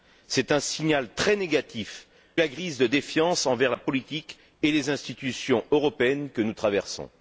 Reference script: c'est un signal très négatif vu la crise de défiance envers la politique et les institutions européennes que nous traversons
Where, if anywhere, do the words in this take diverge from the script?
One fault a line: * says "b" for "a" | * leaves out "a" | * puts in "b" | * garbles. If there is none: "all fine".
* leaves out "vu"